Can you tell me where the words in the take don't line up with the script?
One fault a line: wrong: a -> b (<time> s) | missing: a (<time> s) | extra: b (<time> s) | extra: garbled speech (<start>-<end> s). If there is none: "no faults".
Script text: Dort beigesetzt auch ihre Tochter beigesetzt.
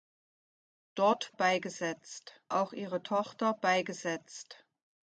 no faults